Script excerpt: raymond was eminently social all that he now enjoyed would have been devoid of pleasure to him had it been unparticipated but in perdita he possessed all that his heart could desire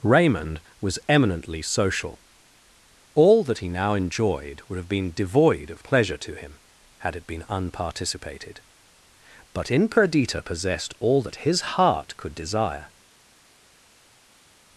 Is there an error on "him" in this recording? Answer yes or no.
no